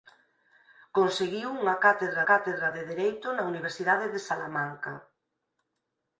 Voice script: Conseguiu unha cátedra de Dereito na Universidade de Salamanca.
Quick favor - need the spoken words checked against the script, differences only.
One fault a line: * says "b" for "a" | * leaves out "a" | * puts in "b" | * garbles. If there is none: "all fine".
* puts in "cátedra"